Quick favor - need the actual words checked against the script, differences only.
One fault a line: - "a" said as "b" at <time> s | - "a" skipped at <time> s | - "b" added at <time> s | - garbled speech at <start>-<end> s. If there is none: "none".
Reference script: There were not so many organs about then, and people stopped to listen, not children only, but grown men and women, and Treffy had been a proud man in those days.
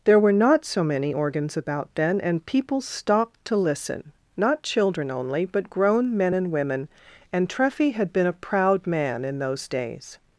none